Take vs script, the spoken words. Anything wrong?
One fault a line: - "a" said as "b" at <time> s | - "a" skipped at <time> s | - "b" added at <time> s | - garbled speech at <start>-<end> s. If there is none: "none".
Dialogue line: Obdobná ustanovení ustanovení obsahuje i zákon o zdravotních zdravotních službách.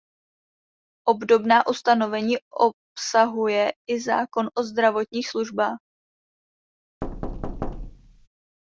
- "ustanovení" skipped at 2.4 s
- "zdravotních" skipped at 5.3 s